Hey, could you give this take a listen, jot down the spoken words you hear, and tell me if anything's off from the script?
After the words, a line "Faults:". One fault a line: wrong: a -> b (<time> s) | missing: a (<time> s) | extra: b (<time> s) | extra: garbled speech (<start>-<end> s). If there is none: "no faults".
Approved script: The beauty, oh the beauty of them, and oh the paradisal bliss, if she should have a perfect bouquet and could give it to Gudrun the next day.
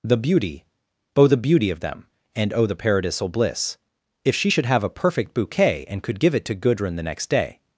The beauty, oh the beauty of them, and oh the paradisal bliss, if she should have a perfect bouquet and could give it to Gudrun the next day.
Faults:
no faults